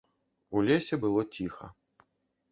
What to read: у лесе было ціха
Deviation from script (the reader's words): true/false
false